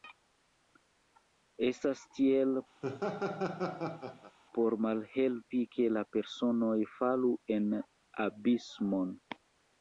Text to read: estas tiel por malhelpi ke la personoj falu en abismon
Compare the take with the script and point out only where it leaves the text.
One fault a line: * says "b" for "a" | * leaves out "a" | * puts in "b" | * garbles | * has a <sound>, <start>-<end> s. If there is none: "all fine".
* has a laugh, 2.8-4.4 s